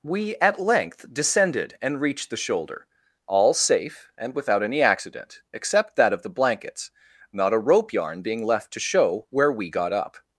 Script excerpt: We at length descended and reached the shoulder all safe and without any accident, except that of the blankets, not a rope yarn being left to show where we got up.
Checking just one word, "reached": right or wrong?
right